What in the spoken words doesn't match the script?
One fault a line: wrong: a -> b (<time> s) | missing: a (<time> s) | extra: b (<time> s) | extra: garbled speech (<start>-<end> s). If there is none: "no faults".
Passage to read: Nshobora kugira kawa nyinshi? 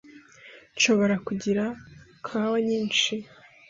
no faults